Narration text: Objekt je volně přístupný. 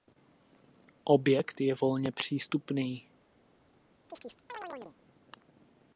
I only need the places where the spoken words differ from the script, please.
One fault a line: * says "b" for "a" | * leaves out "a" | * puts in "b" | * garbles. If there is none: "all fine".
all fine